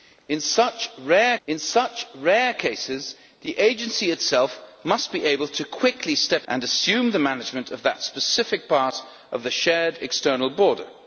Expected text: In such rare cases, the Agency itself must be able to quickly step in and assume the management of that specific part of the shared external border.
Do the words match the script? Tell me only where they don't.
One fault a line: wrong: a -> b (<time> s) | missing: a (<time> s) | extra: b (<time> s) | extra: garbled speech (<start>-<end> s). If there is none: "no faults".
extra: in such rare (1.5 s)
missing: in (6.5 s)